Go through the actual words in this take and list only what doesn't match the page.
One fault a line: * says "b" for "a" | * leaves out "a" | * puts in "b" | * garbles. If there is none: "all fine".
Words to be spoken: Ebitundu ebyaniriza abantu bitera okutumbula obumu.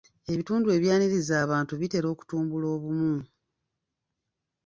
all fine